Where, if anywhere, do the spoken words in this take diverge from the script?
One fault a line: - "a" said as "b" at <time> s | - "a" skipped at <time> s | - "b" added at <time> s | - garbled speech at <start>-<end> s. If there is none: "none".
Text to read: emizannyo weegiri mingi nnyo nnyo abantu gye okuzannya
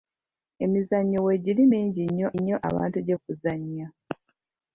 none